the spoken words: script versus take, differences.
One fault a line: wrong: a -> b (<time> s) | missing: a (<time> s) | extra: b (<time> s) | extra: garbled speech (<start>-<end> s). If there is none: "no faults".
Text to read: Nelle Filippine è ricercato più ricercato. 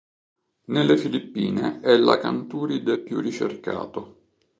wrong: ricercato -> l'acanturide (2.0 s)